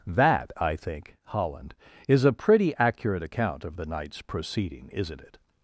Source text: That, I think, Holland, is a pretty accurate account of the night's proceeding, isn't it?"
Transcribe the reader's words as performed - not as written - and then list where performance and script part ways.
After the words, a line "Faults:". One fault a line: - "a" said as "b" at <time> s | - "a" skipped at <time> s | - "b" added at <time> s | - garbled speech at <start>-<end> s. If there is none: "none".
That, I think, Holland, is a pretty accurate account of the night's proceeding, isn't it?"
Faults:
none